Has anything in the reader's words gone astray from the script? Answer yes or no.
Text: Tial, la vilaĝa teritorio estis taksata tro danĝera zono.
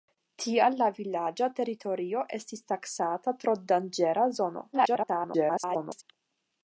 yes